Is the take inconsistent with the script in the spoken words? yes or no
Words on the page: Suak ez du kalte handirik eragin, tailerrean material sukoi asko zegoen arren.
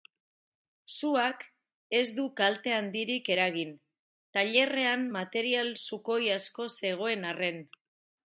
no